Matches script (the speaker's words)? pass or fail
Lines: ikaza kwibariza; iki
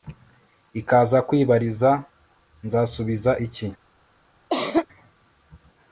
fail